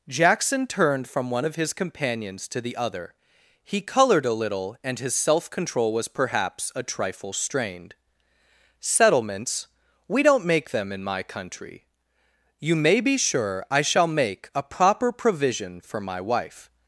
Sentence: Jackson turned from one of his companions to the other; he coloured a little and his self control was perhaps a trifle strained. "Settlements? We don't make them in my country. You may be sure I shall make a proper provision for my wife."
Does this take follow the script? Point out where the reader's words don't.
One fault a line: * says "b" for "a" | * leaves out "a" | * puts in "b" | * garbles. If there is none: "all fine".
all fine